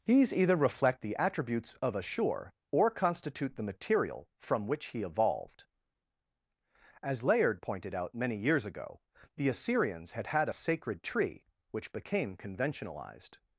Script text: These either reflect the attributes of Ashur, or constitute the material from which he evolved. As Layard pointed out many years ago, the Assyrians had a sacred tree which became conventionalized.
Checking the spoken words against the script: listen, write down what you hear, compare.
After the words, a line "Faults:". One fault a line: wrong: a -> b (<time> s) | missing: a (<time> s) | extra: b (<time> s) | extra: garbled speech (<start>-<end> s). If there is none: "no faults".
These either reflect the attributes of Ashur, or constitute the material from which he evolved. As Layard pointed out many years ago, the Assyrians had had a sacred tree which became conventionalized.
Faults:
extra: had (10.3 s)